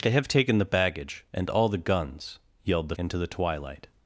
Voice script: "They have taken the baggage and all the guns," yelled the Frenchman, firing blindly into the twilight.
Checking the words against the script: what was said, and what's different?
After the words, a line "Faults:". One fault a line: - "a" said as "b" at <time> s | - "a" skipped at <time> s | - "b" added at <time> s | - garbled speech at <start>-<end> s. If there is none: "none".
"They have taken the baggage and all the guns," yelled the Into the twilight.
Faults:
- "Frenchman firing blindly" skipped at 3.0 s